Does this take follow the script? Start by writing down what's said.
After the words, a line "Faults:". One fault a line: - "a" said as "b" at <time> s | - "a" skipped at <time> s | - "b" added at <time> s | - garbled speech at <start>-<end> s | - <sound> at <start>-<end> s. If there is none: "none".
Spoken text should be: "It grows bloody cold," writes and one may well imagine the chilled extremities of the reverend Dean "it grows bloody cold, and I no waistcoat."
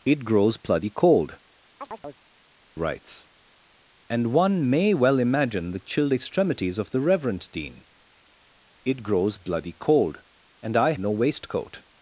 "It grows bloody cold," writes and one may well imagine the chilled extremities of the reverend Dean "it grows bloody cold, and I no waistcoat."
Faults:
- chirp at 1.8-2.2 s